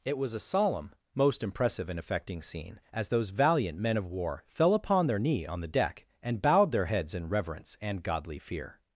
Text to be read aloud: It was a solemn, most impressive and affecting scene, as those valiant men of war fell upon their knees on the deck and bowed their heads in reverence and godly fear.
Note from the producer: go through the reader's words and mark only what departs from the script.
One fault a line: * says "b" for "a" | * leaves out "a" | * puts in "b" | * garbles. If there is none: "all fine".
* says "knee" for "knees"